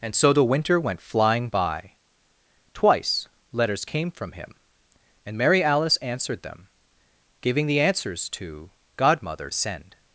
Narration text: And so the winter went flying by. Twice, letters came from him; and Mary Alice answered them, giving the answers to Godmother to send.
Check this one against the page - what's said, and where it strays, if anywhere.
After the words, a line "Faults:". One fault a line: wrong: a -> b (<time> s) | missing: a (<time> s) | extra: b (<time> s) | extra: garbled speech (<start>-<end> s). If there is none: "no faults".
And so the winter went flying by. Twice, letters came from him; and Mary Alice answered them, giving the answers to Godmother send.
Faults:
missing: to (9.5 s)